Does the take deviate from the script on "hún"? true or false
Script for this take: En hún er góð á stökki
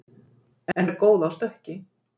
true